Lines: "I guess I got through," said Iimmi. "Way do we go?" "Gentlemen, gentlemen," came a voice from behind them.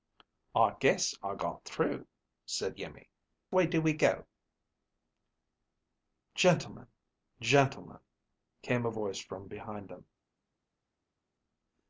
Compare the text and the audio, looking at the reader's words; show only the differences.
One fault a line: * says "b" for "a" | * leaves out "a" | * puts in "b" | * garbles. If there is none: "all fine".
all fine